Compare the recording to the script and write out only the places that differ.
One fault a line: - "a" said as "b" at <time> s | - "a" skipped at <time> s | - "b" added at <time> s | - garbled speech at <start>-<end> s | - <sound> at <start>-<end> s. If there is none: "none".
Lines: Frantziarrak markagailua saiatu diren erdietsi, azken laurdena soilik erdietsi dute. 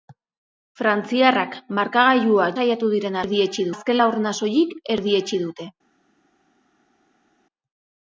none